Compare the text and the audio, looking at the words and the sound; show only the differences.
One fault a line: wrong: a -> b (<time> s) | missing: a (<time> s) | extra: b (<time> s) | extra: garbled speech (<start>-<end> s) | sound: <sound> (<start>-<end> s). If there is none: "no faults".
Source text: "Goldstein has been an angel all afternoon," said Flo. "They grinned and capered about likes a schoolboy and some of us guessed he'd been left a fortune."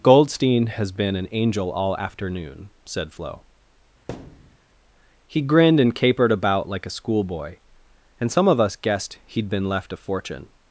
sound: thud (4.1-4.6 s)
wrong: They -> He (5.3 s)
wrong: likes -> like (6.7 s)